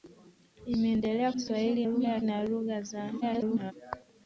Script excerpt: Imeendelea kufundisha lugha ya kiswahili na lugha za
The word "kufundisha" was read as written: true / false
false